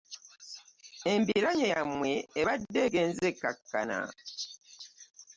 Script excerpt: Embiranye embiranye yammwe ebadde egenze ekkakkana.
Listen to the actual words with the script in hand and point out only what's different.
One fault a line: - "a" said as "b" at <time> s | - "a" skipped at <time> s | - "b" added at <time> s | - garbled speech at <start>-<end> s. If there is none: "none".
- "embiranye" skipped at 1.7 s